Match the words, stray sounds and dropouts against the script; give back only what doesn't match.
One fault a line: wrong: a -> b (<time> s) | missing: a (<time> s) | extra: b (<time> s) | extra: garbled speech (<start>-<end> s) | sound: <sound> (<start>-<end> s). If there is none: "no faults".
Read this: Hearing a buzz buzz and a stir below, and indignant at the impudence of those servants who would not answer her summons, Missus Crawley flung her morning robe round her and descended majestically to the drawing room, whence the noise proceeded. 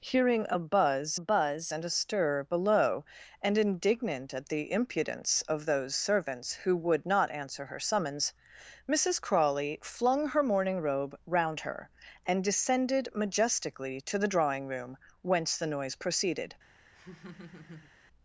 sound: laugh (16.9-17.9 s)